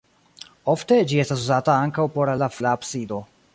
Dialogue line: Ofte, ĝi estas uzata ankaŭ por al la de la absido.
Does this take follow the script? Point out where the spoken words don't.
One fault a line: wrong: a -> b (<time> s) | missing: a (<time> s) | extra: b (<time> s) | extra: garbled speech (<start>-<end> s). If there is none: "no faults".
no faults